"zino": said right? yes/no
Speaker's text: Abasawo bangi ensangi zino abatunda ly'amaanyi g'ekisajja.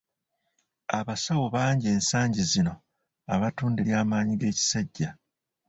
yes